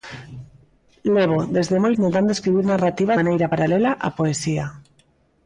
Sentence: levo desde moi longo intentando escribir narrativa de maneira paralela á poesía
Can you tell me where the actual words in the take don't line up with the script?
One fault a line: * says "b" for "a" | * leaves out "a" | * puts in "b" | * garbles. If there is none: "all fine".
* leaves out "longo"
* leaves out "de"